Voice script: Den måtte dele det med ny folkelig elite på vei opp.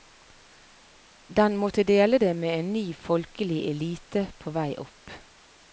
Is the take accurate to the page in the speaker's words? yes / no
no